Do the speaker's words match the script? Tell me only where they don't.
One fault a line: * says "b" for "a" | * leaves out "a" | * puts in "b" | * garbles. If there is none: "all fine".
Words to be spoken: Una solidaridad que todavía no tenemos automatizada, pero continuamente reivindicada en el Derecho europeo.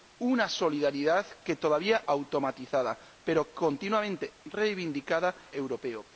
* leaves out "no tenemos"
* leaves out "en el Derecho"